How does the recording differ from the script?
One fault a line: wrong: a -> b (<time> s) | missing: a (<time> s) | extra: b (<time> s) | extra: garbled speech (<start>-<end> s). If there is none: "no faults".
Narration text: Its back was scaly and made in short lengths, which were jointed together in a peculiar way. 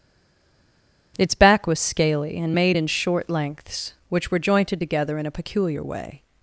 no faults